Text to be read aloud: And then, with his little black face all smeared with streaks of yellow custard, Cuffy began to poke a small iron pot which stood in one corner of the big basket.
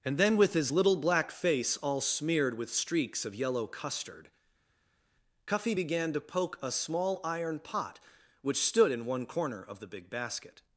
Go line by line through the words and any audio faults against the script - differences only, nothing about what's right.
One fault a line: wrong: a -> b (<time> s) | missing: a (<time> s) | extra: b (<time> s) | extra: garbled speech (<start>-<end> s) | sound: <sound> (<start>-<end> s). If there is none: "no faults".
no faults